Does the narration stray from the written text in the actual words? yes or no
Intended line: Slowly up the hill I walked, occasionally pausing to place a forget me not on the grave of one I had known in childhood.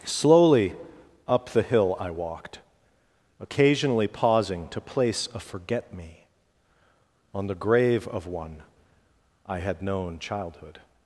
yes